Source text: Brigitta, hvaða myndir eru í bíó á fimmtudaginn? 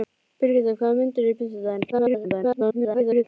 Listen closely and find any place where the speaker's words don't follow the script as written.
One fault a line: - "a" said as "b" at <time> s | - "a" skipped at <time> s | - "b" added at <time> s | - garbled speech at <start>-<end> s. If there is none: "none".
- "bíó" skipped at 1.4 s
- garbled speech at 1.9-3.2 s